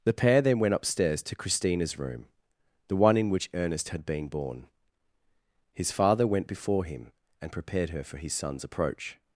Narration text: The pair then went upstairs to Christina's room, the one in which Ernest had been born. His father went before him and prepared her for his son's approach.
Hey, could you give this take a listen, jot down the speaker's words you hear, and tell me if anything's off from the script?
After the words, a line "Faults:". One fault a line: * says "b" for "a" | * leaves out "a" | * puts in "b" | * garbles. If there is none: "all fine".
The pair then went upstairs to Christina's room, the one in which Ernest had been born. His father went before him and prepared her for his son's approach.
Faults:
all fine